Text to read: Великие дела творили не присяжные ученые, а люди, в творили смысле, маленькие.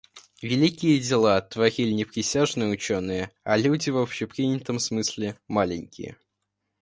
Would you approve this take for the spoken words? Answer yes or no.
no